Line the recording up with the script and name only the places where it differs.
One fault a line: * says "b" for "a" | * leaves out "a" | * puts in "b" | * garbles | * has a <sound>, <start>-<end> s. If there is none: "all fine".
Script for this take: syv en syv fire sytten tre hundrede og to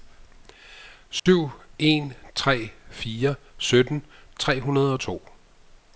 * has a dropout, 1.2-1.3 s
* says "tre" for "syv"